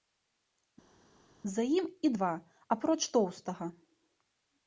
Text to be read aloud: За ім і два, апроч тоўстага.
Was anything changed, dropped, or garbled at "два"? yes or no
no